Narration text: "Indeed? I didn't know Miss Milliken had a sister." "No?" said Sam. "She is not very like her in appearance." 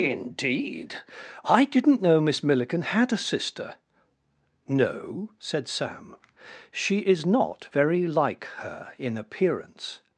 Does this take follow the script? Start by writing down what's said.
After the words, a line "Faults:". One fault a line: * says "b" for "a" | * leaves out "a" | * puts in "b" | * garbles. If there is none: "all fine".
"Indeed? I didn't know Miss Milliken had a sister." "No?" said Sam. "She is not very like her in appearance."
Faults:
all fine